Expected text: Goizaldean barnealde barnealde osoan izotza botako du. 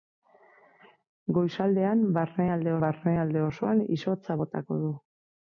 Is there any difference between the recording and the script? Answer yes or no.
no